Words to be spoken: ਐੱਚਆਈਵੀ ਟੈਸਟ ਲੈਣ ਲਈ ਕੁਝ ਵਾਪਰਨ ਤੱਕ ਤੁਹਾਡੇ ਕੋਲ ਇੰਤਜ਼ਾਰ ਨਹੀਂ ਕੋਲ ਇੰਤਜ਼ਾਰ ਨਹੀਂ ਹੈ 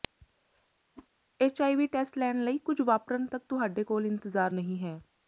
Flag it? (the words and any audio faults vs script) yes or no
yes